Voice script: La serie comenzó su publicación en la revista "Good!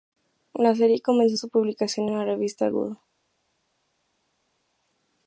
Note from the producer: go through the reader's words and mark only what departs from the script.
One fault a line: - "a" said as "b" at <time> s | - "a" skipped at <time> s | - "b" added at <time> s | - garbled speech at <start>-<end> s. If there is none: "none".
none